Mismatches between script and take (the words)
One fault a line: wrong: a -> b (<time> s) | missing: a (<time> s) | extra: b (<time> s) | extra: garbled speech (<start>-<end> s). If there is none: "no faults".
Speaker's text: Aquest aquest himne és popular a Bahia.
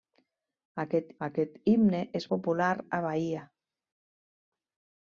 no faults